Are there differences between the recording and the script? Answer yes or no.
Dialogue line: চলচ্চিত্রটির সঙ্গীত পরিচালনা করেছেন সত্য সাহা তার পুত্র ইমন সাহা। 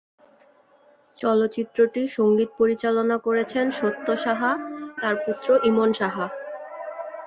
no